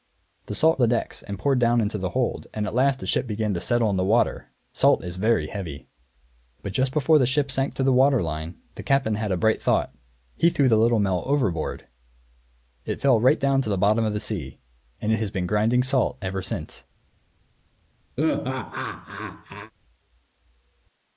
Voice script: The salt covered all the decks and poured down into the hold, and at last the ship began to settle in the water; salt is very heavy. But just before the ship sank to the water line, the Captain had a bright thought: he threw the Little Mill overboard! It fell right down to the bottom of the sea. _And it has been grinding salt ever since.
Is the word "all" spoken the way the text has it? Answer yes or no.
no